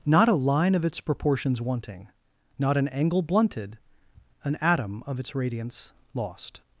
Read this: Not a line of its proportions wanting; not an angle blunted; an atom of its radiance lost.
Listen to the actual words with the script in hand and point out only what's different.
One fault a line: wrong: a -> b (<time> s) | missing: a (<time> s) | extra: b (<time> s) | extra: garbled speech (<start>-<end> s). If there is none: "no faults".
no faults